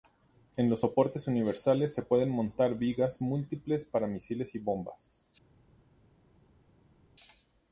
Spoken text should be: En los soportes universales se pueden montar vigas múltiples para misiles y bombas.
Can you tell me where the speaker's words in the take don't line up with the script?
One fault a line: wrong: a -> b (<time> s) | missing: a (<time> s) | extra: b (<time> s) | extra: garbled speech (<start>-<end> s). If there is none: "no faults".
no faults